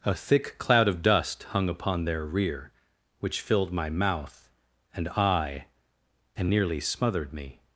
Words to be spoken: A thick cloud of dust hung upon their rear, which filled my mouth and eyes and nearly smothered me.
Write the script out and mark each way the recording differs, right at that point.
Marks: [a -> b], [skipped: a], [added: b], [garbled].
A thick cloud of dust hung upon their rear, which filled my mouth and [eyes -> eye] and nearly smothered me.